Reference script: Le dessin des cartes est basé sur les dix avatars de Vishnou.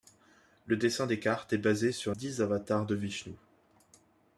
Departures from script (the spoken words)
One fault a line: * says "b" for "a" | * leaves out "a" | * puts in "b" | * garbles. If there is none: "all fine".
* leaves out "les"